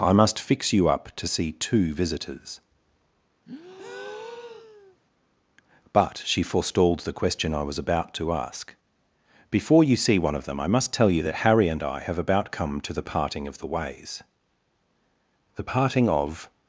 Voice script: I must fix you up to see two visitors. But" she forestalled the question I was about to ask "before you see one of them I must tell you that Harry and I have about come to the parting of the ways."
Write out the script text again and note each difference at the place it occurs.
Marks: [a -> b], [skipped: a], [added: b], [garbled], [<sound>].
I must fix you up to see two visitors. [breath] But" she forestalled the question I was about to ask "before you see one of them I must tell you that Harry and I have about come to the parting of the ways." [added: The parting of]